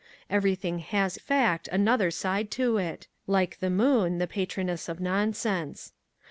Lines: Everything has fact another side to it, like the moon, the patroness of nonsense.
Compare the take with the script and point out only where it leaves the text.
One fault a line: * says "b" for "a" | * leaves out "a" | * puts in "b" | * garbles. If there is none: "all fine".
all fine